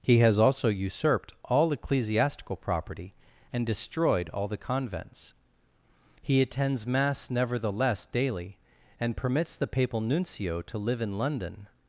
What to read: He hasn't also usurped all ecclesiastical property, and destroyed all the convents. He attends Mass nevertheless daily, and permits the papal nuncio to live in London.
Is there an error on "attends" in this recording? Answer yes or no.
no